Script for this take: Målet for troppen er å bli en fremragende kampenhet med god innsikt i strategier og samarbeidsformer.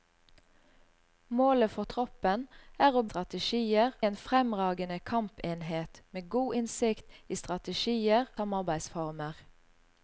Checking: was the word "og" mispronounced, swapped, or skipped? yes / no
yes